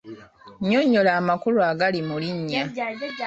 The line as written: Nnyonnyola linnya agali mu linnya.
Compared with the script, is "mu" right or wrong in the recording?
right